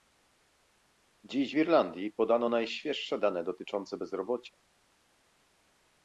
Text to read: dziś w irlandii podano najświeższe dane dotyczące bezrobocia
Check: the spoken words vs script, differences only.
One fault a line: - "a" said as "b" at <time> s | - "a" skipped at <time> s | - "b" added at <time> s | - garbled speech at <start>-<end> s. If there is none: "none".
none